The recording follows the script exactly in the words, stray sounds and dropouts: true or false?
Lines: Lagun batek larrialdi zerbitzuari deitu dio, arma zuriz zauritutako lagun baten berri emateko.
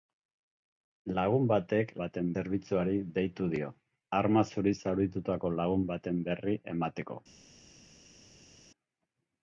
false